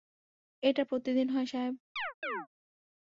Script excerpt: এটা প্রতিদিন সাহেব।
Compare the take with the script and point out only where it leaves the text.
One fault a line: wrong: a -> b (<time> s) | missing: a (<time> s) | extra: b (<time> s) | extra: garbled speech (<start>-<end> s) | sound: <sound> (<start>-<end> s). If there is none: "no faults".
extra: হয় (1.3 s)
sound: chirp (2.0-2.5 s)